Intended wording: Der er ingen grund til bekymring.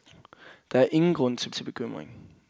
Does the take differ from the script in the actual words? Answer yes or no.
yes